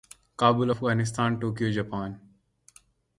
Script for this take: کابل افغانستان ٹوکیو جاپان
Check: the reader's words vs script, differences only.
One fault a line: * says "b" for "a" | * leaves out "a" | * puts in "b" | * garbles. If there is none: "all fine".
all fine